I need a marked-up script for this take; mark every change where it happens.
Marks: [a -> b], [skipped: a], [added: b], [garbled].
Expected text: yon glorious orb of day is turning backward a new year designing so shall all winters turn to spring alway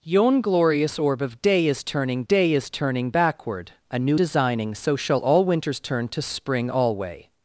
yon glorious orb of day is turning [added: day is turning] backward a new [skipped: year] designing so shall all winters turn to spring alway